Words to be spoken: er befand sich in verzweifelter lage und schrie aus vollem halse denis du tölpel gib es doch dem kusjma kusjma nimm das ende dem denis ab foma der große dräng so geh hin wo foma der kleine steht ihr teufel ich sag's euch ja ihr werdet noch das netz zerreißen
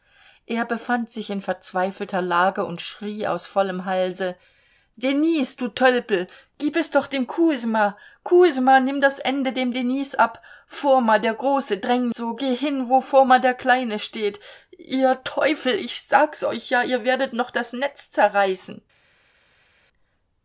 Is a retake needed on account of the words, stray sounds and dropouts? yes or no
no